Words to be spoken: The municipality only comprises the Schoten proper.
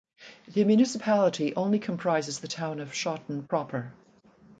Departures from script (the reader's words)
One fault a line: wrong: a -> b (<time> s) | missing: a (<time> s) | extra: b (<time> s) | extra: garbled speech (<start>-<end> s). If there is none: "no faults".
extra: town of (2.4 s)